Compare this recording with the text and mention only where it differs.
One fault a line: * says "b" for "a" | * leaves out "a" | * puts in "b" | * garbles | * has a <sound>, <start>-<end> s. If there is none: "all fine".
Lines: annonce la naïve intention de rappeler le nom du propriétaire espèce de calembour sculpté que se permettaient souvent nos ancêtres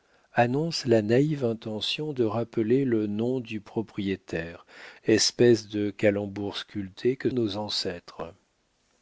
* leaves out "se permettaient souvent"